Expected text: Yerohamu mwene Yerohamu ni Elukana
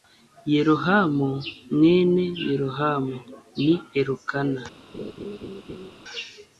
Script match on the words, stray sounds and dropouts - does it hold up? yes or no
no